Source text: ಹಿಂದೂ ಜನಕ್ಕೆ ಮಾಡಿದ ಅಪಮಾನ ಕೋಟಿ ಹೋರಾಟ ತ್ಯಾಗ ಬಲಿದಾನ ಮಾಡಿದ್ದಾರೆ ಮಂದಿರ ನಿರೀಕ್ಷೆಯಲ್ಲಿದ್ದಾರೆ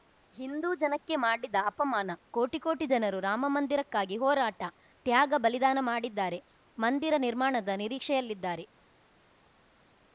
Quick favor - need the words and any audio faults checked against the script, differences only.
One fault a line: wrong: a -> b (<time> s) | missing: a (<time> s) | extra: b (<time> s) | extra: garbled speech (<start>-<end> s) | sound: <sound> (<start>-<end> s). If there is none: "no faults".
extra: ಕೋಟಿ ಜನರು ರಾಮಮಂದಿರಕ್ಕಾಗಿ (2.6 s)
extra: ನಿರ್ಮಾಣದ (7.3 s)